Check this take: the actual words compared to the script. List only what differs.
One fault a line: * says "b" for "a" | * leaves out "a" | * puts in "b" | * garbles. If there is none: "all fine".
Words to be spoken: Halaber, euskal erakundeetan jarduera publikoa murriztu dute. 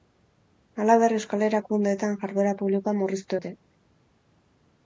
all fine